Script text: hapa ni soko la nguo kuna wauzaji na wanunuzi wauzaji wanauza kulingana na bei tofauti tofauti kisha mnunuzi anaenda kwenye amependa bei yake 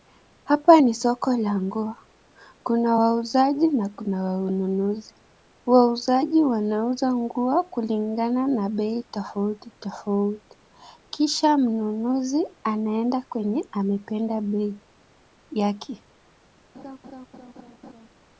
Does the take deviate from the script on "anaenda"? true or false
false